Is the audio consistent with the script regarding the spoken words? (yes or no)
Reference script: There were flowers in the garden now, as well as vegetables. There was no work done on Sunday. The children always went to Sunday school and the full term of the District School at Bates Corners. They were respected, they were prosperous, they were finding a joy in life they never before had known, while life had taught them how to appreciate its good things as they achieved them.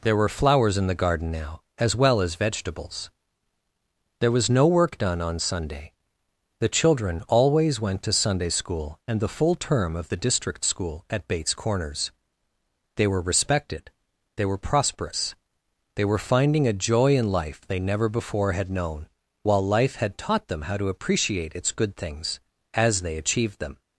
yes